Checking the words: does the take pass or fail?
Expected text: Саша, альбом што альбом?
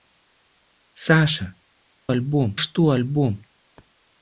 pass